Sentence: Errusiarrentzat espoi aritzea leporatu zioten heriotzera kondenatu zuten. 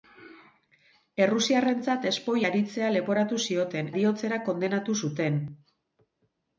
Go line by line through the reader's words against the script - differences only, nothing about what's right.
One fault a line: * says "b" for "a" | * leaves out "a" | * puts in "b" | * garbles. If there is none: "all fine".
all fine